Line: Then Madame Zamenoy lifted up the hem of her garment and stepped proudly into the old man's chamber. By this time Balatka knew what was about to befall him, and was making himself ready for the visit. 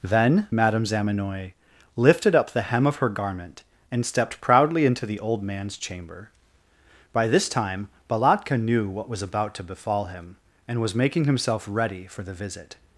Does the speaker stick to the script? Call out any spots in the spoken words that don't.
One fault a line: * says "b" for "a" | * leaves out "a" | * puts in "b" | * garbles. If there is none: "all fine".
all fine